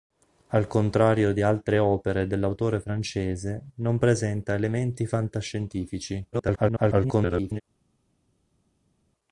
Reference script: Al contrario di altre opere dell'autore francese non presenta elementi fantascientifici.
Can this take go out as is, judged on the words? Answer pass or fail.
fail